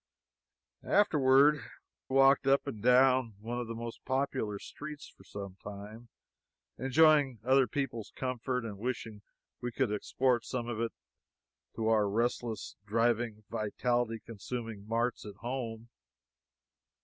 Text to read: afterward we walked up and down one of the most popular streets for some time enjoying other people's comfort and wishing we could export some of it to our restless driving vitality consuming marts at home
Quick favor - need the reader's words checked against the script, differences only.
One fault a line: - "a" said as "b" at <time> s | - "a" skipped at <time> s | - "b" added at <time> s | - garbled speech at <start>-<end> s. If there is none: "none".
- "we" skipped at 1.6 s